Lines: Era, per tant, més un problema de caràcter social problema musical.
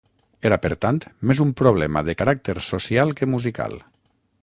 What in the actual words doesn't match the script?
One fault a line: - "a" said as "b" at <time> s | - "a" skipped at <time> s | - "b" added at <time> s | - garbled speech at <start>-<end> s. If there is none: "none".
- "problema" said as "que" at 3.2 s